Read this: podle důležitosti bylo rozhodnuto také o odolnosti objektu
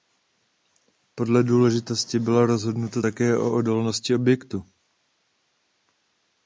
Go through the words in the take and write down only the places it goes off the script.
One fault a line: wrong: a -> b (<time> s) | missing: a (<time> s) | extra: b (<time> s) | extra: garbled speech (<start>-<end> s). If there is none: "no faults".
no faults